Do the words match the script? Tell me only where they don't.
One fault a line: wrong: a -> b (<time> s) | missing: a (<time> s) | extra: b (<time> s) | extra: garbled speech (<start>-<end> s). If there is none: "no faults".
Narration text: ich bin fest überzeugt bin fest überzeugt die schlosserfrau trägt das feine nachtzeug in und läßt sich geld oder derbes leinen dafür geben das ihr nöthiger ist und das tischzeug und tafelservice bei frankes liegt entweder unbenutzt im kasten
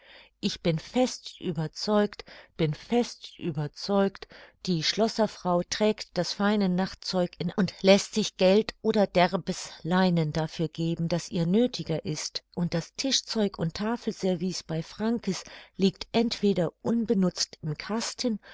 no faults